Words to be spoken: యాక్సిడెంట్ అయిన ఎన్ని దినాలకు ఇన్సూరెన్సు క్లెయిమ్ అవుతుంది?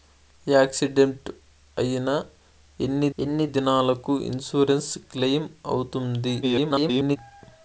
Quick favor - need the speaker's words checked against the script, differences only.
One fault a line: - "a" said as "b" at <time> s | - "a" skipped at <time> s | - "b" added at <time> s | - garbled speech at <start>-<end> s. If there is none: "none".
- "ఎన్ని" added at 3.2 s
- garbled speech at 6.4-7.2 s